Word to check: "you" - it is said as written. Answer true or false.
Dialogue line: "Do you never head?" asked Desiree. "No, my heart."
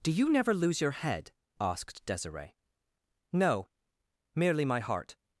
true